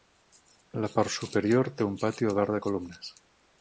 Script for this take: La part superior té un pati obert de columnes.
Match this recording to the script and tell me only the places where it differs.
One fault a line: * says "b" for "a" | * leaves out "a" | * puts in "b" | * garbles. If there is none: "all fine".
all fine